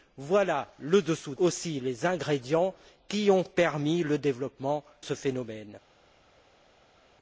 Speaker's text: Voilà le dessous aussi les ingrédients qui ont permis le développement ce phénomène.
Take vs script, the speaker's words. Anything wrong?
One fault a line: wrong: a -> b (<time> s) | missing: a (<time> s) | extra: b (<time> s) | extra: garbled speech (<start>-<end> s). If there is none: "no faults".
no faults